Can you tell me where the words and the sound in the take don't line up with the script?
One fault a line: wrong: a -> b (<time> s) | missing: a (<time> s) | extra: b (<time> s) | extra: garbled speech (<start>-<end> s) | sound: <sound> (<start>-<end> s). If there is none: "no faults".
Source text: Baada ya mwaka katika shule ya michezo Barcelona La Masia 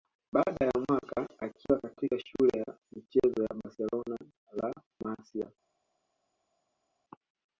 extra: akiwa (1.4 s)
extra: ya (3.4 s)